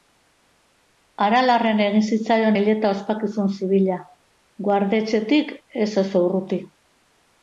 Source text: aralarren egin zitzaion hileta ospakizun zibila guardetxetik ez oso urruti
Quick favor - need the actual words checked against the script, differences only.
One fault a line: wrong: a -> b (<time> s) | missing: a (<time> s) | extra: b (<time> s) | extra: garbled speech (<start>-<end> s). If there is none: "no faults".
no faults